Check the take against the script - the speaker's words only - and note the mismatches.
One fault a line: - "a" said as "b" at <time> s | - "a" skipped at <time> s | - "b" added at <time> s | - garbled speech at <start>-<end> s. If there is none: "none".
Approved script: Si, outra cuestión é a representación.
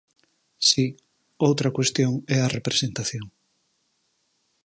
none